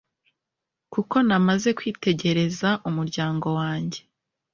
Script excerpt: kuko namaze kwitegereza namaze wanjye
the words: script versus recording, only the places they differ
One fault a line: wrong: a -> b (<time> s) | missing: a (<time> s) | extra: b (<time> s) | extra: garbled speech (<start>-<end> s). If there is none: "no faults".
wrong: namaze -> umuryango (2.9 s)